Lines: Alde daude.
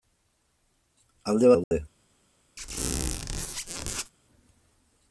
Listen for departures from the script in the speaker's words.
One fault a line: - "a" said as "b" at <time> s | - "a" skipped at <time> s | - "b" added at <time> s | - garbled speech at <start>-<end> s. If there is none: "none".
none